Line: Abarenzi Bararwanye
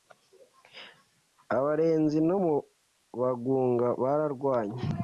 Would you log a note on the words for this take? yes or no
yes